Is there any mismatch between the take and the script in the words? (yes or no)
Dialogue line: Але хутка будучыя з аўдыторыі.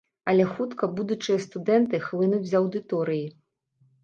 yes